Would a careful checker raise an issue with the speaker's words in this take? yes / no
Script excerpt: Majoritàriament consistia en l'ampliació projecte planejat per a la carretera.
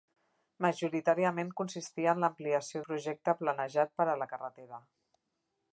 no